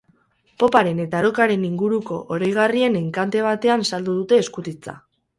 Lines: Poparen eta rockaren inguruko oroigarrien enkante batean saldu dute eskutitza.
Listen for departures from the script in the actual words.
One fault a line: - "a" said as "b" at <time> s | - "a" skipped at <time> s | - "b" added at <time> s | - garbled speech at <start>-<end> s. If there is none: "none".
none